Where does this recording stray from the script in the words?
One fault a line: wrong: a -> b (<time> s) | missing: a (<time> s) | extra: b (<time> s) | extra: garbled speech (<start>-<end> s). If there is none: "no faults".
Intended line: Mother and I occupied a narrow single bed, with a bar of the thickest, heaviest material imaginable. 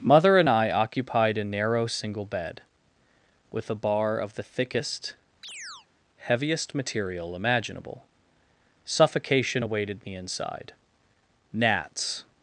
extra: Suffocation awaited me inside gnats (8.8 s)